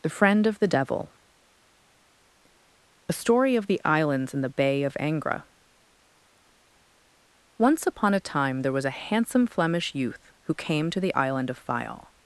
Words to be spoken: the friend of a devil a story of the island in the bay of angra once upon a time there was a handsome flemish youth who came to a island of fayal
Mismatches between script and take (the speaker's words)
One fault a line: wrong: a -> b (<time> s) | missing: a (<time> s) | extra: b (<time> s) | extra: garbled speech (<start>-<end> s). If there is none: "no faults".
wrong: a -> the (0.6 s)
wrong: island -> islands (3.9 s)
wrong: a -> the (11.0 s)